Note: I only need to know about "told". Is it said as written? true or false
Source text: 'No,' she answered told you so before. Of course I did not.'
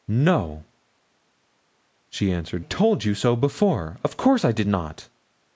true